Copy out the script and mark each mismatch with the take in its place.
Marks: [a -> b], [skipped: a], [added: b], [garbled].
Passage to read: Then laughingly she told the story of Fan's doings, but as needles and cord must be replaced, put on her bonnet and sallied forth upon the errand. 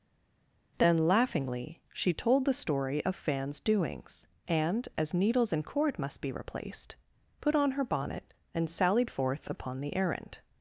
Then laughingly she told the story of Fan's doings, [but -> and] as needles and cord must be replaced, put on her bonnet and sallied forth upon the errand.